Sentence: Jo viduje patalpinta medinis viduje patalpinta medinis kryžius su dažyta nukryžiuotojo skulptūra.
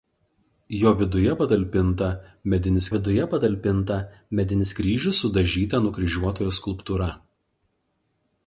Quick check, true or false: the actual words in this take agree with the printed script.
true